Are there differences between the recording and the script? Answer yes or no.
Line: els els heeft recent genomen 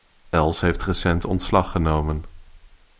yes